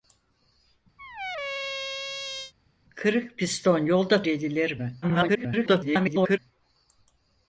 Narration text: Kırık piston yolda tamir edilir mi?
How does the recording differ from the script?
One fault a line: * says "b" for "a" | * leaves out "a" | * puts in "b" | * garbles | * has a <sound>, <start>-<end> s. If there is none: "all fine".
* has a squeak, 1.0-2.5 s
* leaves out "tamir"
* garbles